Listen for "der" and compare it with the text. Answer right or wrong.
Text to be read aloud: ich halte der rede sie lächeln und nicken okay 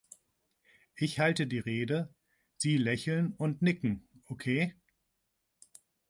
wrong